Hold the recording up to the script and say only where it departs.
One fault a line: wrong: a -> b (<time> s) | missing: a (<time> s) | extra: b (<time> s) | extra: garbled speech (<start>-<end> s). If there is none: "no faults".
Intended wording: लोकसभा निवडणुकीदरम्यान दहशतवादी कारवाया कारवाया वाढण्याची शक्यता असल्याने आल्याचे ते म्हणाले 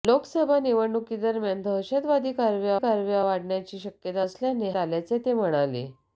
no faults